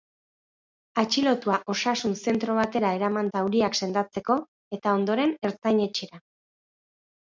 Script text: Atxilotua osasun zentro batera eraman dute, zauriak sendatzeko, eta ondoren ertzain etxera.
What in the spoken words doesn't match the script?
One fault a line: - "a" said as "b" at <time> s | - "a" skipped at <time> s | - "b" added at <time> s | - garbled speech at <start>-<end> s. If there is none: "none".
- "dute" skipped at 3.3 s